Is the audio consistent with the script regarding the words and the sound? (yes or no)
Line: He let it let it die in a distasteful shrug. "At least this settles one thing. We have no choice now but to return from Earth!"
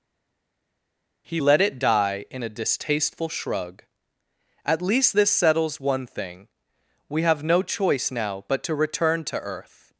no